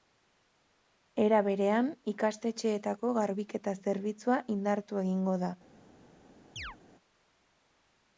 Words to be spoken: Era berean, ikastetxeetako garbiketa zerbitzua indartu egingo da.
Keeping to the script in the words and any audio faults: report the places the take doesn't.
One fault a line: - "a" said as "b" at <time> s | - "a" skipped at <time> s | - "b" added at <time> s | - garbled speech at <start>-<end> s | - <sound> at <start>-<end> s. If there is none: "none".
- chirp at 6.6-6.8 s